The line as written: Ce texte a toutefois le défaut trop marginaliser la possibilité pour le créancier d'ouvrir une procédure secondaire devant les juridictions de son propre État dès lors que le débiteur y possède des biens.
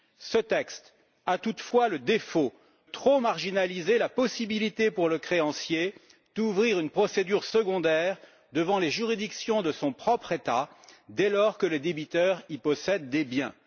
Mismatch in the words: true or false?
false